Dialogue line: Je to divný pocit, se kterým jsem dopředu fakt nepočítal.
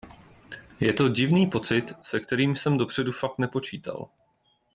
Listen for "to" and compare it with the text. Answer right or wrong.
right